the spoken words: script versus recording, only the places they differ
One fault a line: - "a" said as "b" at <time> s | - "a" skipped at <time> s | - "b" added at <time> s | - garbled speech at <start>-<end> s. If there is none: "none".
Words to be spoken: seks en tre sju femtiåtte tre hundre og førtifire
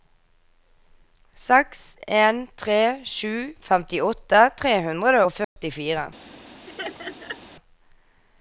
none